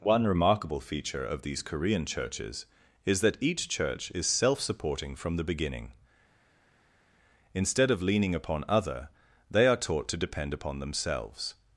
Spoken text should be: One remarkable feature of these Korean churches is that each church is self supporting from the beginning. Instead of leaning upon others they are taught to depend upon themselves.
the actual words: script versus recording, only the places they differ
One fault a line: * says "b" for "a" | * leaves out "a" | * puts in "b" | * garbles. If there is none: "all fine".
* says "other" for "others"